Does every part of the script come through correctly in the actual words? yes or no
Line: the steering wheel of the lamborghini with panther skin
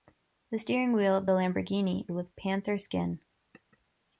yes